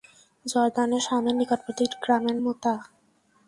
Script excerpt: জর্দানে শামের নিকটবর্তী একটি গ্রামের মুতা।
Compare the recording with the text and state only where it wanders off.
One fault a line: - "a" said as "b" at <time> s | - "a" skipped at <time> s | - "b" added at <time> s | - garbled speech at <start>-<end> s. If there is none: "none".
none